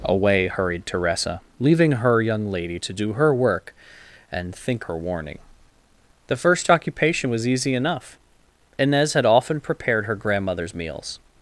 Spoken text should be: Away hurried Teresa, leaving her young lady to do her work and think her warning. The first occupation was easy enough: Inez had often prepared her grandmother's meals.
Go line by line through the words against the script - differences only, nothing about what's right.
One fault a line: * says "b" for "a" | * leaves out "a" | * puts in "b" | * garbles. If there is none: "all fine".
all fine